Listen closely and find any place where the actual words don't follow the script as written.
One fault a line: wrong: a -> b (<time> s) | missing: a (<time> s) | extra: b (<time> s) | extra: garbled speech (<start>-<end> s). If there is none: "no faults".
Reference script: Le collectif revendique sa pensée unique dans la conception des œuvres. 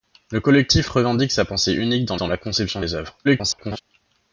extra: dans (2.2 s)
extra: garbled speech (3.2-3.8 s)